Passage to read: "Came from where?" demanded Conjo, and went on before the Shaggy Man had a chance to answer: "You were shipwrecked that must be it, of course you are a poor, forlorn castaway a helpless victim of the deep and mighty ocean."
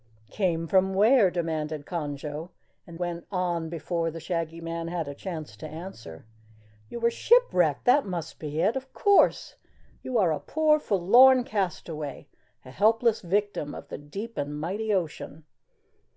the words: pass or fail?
pass